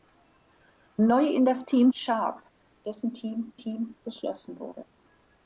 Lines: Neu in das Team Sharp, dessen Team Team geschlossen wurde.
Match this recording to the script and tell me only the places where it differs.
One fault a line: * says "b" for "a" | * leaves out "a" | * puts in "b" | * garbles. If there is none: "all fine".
all fine